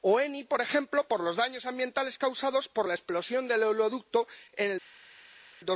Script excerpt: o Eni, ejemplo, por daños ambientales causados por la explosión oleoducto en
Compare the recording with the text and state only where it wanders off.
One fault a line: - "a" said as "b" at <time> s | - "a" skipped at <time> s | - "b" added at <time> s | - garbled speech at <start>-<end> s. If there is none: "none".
- "por" added at 0.4 s
- "los" added at 1.2 s
- "del" added at 3.5 s